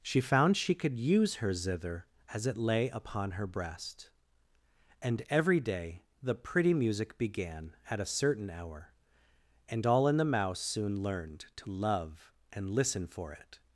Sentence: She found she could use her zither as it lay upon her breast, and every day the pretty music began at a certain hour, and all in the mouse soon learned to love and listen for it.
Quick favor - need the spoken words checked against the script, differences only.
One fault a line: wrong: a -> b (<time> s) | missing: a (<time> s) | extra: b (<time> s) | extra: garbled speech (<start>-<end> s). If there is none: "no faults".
no faults